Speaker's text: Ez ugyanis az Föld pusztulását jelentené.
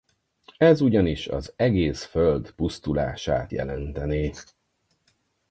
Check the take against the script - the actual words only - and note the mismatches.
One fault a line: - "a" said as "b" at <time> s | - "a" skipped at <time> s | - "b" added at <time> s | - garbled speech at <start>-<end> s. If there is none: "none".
- "egész" added at 1.6 s